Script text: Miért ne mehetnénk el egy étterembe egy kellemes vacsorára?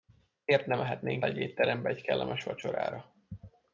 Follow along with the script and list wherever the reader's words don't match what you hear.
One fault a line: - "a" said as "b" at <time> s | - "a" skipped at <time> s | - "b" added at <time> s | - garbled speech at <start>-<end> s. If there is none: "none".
- "el" skipped at 1.2 s